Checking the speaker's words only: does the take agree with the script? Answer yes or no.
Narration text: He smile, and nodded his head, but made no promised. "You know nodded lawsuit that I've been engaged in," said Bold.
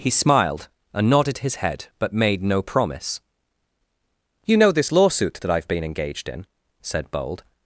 no